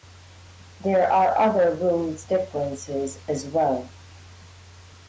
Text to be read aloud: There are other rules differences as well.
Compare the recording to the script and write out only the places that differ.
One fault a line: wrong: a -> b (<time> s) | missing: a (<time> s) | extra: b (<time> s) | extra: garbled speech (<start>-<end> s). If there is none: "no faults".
no faults